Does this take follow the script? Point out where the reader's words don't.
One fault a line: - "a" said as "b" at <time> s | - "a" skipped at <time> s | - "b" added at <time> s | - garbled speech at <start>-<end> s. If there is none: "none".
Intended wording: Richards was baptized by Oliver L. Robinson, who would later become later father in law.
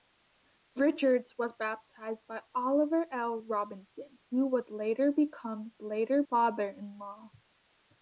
none